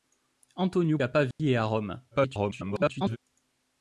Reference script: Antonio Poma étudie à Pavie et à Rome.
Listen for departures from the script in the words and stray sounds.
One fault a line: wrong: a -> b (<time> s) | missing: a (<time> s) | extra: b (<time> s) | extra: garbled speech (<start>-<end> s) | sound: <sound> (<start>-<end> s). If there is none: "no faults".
missing: Poma étudie (1.0 s)
sound: dropout (1.3-1.4 s)
extra: garbled speech (2.1-3.2 s)